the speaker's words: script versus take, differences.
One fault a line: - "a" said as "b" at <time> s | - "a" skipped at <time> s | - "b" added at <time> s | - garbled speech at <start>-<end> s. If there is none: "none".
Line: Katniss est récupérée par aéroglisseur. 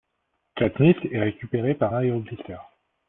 none